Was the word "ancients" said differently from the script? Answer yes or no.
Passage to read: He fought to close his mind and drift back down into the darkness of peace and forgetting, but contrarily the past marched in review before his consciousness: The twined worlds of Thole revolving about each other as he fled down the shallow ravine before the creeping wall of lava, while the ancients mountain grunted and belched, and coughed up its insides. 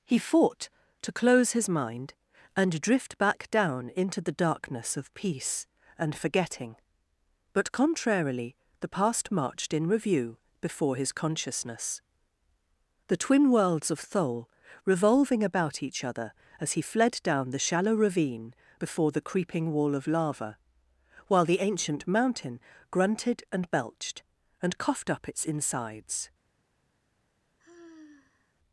yes